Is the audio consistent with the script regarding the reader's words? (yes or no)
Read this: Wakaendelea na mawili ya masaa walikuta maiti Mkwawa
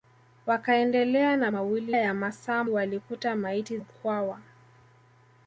yes